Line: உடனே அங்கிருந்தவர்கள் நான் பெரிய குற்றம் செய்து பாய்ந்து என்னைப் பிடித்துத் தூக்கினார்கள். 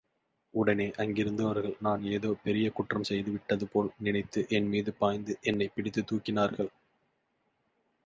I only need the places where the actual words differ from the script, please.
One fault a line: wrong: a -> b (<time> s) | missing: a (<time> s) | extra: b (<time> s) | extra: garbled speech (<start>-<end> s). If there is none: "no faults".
extra: ஏதோ (2.0 s)
extra: விட்டதுபோல் நினைத்து என்மீது (3.3 s)